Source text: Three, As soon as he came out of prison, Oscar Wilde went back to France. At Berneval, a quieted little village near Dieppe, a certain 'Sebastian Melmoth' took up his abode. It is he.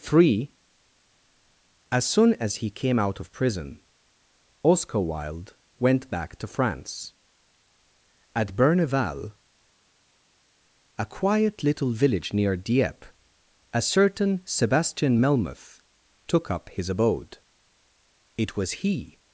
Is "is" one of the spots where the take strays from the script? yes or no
yes